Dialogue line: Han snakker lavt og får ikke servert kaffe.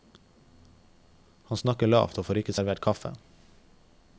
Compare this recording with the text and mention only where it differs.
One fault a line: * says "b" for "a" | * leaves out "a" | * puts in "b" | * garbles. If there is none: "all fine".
all fine